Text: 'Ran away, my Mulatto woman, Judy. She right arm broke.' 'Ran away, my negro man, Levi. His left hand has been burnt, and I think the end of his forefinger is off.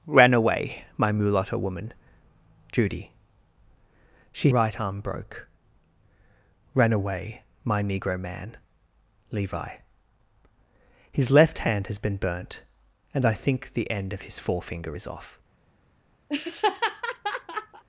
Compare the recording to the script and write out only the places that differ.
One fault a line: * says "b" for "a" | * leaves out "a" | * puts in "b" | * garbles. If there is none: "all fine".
all fine